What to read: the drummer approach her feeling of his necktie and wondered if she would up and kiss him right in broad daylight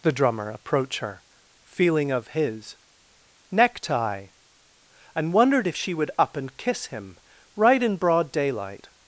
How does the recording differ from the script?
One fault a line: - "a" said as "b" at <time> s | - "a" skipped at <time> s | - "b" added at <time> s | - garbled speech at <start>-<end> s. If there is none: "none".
none